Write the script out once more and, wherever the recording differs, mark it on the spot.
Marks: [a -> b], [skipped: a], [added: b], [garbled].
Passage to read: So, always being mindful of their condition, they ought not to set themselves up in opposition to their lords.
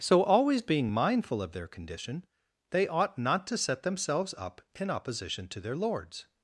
So, always being mindful of their condition, they ought not to set themselves up in opposition to their lords.